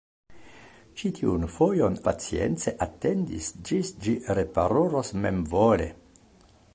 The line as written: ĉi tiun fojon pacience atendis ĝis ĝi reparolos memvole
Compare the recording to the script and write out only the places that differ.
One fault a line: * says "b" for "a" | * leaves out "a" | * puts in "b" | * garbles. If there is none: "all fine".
all fine